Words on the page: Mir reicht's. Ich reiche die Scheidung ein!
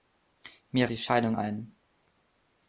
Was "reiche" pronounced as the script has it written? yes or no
no